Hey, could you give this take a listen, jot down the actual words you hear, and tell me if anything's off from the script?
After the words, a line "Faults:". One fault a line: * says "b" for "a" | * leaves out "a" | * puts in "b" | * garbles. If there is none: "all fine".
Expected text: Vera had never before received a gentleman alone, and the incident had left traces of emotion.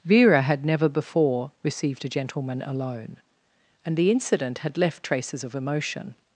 Vera had never before received a gentleman alone, and the incident had left traces of emotion.
Faults:
all fine